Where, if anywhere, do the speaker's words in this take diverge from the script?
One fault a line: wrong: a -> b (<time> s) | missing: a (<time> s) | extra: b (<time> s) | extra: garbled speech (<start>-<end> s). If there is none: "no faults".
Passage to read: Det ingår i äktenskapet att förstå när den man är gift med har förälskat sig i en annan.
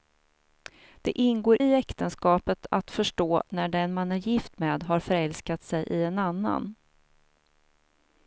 no faults